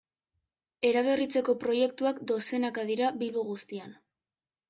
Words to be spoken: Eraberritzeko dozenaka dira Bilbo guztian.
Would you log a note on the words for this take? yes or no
yes